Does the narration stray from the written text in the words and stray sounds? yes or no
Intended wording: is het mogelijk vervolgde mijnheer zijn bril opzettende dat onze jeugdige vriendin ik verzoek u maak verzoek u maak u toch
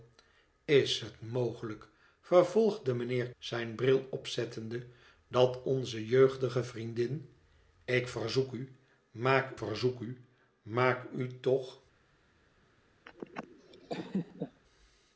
yes